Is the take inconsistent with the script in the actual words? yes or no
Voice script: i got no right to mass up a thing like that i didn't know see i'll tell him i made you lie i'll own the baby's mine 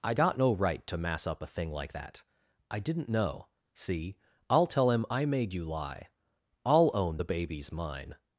no